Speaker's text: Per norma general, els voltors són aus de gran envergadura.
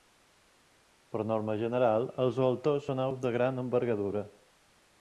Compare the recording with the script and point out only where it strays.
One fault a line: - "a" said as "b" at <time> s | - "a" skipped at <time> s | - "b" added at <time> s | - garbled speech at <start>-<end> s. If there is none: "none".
none